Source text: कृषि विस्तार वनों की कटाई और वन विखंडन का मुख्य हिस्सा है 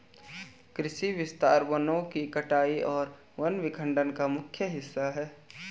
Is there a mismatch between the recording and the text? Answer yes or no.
no